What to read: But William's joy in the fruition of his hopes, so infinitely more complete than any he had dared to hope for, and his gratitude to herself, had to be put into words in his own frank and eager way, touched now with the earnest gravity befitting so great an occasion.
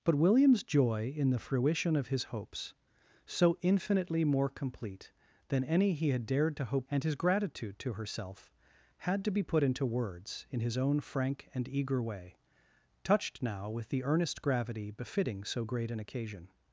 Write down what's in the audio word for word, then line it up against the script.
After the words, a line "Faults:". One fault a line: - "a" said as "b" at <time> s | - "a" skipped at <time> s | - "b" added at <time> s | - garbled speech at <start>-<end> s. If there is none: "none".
But William's joy in the fruition of his hopes, so infinitely more complete than any he had dared to hope and his gratitude to herself, had to be put into words in his own frank and eager way, touched now with the earnest gravity befitting so great an occasion.
Faults:
- "for" skipped at 6.9 s